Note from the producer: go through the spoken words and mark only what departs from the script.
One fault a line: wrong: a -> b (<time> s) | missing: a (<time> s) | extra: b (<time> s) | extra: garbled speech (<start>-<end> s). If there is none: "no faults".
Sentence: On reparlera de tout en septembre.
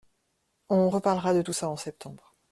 extra: ça (1.5 s)